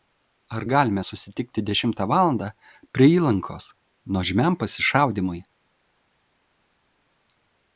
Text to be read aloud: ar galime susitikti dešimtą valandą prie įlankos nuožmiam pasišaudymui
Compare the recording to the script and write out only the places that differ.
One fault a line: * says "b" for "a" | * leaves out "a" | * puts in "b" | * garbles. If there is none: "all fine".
all fine